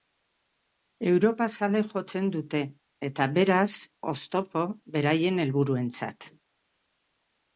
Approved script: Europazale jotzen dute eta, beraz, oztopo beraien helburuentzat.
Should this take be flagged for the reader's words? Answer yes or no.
no